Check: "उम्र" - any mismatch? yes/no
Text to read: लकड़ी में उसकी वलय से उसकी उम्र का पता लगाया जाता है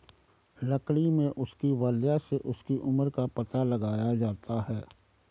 no